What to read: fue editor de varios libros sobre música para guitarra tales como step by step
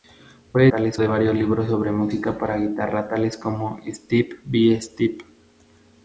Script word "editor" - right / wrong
wrong